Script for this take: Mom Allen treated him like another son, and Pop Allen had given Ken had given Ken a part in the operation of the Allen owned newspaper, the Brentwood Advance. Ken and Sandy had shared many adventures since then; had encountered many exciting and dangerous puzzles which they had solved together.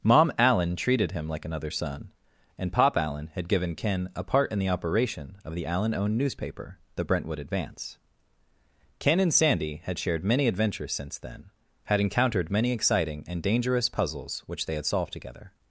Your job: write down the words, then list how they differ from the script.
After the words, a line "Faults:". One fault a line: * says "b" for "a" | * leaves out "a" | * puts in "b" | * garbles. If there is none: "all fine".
Mom Allen treated him like another son, and Pop Allen had given Ken a part in the operation of the Allen owned newspaper, the Brentwood Advance. Ken and Sandy had shared many adventures since then; had encountered many exciting and dangerous puzzles which they had solved together.
Faults:
* leaves out "had given Ken"